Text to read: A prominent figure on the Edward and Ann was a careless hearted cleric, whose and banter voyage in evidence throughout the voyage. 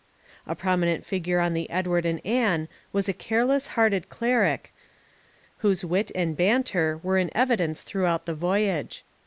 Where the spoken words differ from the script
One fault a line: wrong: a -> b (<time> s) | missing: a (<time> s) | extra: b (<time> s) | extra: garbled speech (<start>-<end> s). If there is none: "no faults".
extra: wit (5.9 s)
wrong: voyage -> were (7.0 s)